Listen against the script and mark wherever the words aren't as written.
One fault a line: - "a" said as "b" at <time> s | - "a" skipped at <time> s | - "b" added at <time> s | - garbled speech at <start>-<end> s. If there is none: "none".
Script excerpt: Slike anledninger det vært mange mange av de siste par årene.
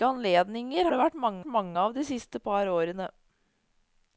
none